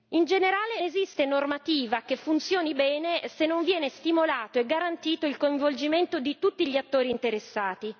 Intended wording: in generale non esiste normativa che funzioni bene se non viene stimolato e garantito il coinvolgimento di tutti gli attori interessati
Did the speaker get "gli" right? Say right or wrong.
right